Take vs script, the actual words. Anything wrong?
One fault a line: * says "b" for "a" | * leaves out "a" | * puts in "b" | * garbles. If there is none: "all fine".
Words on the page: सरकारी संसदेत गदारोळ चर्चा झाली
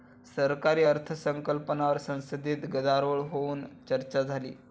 * puts in "अर्थसंकल्पावर"
* puts in "होऊन"